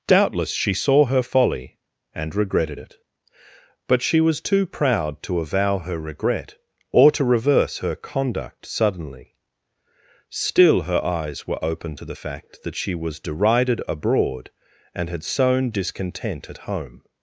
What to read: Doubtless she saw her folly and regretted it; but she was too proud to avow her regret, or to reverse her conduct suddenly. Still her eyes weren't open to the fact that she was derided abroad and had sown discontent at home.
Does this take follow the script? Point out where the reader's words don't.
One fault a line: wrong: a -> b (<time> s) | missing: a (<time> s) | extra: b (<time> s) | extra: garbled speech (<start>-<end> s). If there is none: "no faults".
wrong: weren't -> were (11.5 s)